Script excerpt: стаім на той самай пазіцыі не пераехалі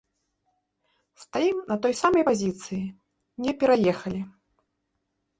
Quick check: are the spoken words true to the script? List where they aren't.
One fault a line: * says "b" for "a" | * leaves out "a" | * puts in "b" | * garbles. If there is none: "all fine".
all fine